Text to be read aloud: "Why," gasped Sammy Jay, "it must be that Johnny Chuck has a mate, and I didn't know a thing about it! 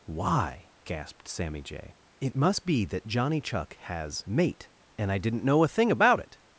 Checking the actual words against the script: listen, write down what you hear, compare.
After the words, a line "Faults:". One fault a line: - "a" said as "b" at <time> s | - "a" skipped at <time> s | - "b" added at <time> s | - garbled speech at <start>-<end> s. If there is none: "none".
"Why," gasped Sammy Jay, "it must be that Johnny Chuck has mate, and I didn't know a thing about it!
Faults:
- "a" skipped at 4.2 s